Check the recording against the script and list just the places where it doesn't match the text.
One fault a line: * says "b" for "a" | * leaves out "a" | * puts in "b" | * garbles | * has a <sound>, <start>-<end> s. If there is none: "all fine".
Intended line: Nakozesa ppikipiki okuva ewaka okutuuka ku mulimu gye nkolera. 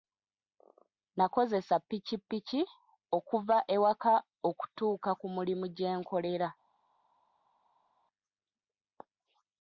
all fine